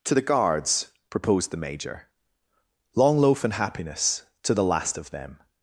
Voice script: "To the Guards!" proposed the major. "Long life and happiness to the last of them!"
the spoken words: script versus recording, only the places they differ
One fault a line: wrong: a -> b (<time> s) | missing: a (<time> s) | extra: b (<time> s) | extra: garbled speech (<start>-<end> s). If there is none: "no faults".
wrong: life -> loaf (3.2 s)